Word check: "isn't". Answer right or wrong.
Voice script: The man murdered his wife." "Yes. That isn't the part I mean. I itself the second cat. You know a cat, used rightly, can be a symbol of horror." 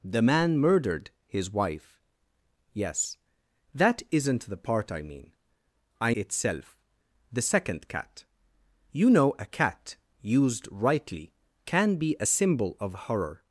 right